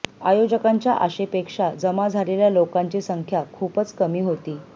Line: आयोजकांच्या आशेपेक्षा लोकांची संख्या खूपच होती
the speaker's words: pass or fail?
fail